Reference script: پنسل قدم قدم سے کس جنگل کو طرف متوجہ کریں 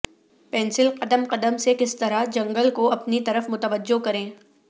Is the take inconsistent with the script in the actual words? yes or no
yes